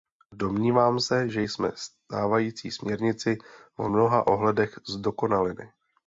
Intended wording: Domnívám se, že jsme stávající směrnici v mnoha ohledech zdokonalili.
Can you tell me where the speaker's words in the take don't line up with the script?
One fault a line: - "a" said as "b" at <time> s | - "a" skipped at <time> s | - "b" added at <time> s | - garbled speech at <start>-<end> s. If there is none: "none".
none